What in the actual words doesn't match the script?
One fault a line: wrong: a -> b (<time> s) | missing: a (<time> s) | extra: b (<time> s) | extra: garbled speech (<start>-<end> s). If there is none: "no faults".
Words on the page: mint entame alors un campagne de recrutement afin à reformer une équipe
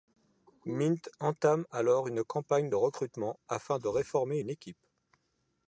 wrong: un -> une (2.1 s)
wrong: à -> de (3.8 s)